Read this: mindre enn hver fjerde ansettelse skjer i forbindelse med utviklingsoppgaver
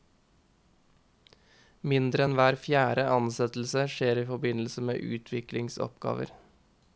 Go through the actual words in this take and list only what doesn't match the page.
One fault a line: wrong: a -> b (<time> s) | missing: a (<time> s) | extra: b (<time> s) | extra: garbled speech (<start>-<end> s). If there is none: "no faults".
no faults